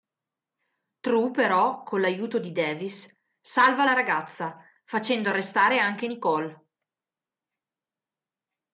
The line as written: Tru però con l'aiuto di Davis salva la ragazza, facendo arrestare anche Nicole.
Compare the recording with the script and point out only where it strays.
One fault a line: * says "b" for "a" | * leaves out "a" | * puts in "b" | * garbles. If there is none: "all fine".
all fine